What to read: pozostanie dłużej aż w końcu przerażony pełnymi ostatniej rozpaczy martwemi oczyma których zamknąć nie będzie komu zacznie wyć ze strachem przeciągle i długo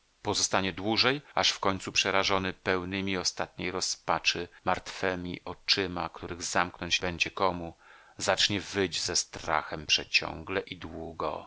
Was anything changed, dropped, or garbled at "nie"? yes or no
yes